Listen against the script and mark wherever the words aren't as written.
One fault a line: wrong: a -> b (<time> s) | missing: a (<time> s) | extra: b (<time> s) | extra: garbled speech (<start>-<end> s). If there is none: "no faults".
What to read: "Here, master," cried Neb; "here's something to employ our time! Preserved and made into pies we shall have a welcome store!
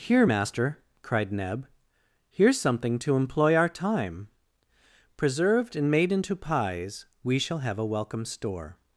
no faults